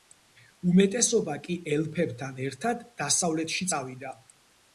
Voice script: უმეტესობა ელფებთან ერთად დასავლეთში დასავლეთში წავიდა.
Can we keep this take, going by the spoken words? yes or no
no